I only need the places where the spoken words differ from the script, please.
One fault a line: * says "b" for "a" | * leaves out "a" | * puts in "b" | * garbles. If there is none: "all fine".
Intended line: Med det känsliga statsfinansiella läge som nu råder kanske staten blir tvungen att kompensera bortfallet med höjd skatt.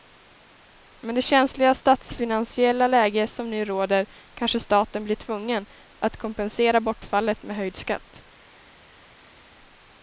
all fine